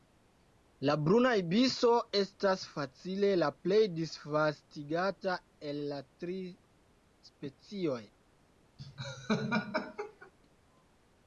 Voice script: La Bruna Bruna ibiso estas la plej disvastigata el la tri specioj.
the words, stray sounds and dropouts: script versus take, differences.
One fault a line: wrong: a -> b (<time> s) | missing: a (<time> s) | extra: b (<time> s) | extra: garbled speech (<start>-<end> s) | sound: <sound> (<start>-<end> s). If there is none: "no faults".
missing: Bruna (1.3 s)
extra: facile (2.8 s)
sound: laugh (8.8-10.3 s)